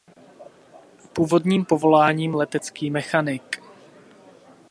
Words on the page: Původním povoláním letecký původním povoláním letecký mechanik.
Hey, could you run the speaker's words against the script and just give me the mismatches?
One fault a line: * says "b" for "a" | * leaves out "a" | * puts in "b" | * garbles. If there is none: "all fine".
* leaves out "původním povoláním letecký"